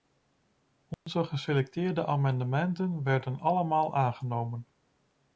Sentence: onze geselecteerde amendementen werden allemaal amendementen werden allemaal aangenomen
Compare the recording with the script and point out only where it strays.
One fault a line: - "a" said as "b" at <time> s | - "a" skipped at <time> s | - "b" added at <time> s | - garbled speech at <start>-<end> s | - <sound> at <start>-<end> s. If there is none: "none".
- dropout at 0.9-1.1 s
- "amendementen werden allemaal" skipped at 4.0 s